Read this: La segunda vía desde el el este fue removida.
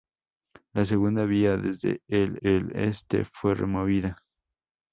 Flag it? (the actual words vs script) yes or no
no